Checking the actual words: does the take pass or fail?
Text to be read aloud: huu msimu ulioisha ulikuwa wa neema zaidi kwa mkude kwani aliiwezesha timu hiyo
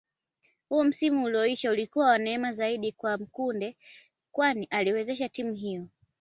pass